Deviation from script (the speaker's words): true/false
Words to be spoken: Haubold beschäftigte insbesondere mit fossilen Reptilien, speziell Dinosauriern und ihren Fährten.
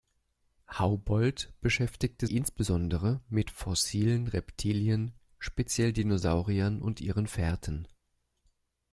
false